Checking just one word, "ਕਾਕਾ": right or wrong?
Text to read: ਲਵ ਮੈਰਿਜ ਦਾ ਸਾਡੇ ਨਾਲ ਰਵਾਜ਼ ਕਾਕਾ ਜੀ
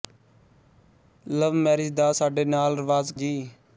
wrong